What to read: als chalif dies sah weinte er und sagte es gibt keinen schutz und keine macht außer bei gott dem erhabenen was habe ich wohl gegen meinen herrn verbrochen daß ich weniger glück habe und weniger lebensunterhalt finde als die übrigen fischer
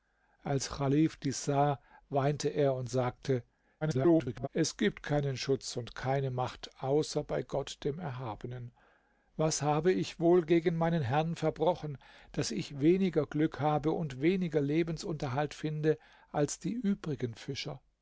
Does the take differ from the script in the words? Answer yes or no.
yes